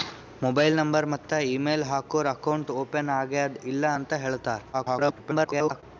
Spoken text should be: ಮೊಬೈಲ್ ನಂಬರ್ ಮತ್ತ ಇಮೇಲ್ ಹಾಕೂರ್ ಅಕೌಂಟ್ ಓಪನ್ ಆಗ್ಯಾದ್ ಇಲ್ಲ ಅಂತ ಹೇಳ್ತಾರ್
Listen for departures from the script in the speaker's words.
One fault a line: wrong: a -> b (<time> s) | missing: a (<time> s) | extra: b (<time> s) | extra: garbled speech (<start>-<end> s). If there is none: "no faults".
extra: garbled speech (4.7-5.8 s)